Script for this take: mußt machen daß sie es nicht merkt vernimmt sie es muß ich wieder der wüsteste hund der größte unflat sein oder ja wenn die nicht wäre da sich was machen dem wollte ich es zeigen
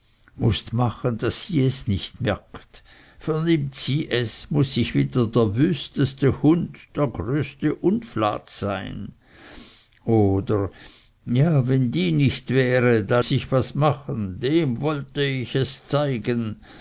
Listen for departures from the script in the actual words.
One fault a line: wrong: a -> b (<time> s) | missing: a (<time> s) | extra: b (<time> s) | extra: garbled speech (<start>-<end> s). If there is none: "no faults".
no faults